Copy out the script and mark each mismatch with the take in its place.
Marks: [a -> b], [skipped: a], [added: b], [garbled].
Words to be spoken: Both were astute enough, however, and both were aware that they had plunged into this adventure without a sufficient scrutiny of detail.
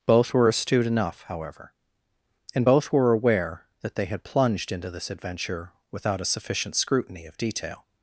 Both were astute enough, however, and both were aware that they had plunged into this adventure without a sufficient scrutiny of detail.